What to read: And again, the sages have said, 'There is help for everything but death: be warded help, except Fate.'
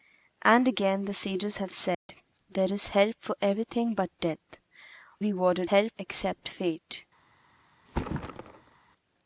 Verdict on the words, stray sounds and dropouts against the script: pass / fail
fail